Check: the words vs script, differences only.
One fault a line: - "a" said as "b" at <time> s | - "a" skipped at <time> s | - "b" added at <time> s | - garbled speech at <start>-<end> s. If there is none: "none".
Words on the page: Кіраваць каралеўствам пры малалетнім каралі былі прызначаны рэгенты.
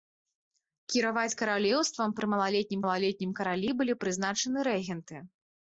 - "малалетнім" added at 2.8 s